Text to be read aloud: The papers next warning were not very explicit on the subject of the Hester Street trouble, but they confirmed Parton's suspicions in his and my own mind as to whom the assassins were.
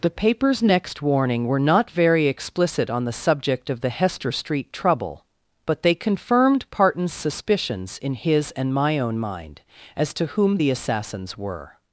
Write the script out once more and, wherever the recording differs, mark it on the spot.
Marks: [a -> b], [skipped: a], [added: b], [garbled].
The papers next warning were not very explicit on the subject of the Hester Street trouble, but they confirmed Parton's suspicions in his and my own mind as to whom the assassins were.